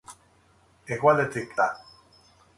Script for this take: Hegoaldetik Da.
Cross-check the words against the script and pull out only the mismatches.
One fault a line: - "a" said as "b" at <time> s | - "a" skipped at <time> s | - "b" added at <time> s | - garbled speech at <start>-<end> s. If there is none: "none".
none